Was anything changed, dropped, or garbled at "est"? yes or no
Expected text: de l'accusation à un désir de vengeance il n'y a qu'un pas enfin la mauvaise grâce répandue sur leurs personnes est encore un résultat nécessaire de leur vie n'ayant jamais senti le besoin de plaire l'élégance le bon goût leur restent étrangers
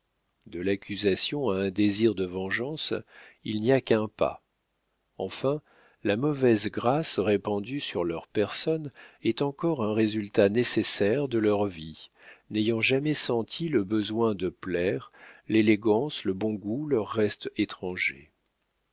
no